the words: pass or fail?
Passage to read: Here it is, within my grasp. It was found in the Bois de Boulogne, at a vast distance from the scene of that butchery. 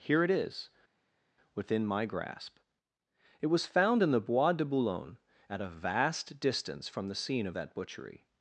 pass